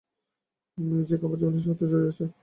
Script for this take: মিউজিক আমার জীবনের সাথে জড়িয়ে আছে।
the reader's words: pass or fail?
pass